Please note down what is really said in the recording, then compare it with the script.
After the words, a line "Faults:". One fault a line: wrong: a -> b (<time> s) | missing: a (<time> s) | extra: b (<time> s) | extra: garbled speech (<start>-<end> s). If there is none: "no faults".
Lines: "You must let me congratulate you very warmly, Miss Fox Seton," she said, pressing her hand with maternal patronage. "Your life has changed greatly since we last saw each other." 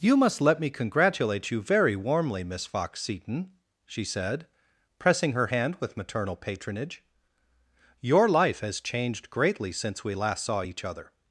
"You must let me congratulate you very warmly, Miss Fox Seton," she said, pressing her hand with maternal patronage. "Your life has changed greatly since we last saw each other."
Faults:
no faults